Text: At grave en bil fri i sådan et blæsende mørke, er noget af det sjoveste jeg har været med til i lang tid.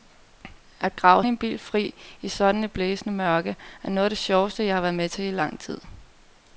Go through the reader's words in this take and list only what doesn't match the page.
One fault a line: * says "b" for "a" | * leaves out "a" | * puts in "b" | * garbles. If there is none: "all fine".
all fine